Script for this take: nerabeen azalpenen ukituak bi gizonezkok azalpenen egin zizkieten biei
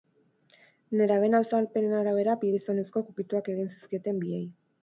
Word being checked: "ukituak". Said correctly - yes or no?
no